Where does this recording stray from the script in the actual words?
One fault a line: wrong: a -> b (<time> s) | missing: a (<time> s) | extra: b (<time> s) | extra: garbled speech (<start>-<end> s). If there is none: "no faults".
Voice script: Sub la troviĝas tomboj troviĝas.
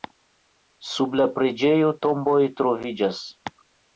wrong: troviĝas -> preĝejo (1.4 s)